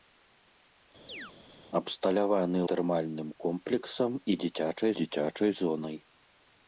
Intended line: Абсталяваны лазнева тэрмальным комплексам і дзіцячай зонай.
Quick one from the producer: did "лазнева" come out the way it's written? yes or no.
no